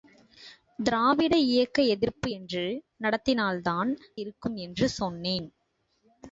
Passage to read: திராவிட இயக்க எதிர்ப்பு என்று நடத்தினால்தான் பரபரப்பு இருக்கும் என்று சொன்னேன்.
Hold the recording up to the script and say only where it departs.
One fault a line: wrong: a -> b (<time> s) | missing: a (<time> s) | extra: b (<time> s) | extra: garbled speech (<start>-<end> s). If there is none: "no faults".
missing: பரபரப்பு (3.9 s)